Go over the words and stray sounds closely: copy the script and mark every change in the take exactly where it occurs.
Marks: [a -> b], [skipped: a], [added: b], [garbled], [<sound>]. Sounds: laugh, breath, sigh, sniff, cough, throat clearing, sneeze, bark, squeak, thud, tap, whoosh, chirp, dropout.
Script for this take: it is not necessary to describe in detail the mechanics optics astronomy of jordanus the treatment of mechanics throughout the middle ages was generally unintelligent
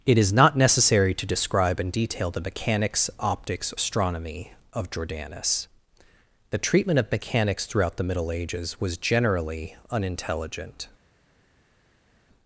it is not necessary to describe in detail the mechanics optics astronomy of jordanus the treatment of mechanics throughout the middle ages was generally unintelligent